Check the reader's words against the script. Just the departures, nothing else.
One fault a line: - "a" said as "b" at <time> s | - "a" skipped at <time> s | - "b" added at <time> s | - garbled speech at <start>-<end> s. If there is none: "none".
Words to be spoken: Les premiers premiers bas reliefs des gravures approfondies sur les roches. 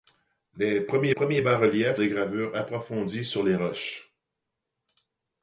none